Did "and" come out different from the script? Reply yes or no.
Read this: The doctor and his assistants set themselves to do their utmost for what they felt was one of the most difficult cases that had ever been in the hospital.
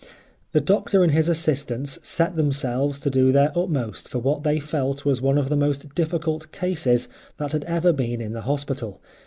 no